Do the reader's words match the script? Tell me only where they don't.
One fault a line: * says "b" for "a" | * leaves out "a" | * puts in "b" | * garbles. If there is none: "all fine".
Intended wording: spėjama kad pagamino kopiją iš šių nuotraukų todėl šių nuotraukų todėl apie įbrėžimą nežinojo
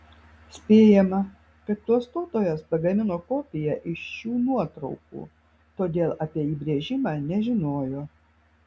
* puts in "klastotojas"
* leaves out "šių nuotraukų todėl"